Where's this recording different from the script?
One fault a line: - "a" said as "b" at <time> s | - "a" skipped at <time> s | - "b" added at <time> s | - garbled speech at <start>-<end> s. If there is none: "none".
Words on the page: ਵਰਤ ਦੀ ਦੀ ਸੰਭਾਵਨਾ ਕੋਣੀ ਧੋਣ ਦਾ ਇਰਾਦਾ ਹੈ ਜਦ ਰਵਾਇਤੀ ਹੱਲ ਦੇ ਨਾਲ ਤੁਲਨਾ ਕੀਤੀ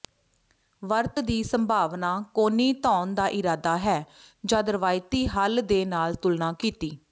- "ਦੀ" skipped at 1.4 s